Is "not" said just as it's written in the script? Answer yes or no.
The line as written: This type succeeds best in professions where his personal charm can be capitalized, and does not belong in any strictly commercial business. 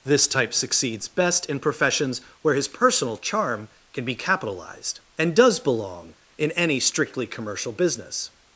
no